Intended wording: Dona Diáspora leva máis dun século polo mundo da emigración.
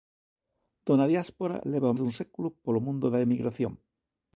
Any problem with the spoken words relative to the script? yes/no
yes